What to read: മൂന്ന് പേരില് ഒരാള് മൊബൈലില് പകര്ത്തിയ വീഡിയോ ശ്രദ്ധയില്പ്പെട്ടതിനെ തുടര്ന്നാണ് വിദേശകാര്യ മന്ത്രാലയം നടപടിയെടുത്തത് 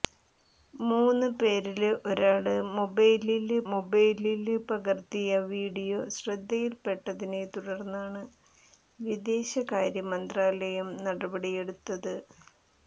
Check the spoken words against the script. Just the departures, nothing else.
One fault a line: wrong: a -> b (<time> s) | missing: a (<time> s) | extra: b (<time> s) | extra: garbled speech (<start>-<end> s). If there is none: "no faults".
extra: മൊബൈലില് (3.7 s)